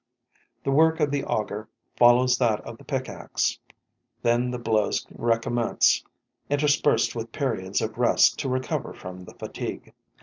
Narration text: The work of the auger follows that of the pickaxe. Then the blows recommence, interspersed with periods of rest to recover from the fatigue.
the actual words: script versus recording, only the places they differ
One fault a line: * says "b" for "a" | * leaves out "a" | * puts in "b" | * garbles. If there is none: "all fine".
all fine